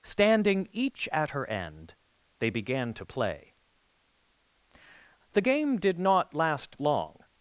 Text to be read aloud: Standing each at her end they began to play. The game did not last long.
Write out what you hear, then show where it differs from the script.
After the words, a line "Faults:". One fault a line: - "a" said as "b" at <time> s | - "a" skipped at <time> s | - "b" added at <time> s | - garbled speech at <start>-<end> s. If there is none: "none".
Standing each at her end they began to play. The game did not last long.
Faults:
none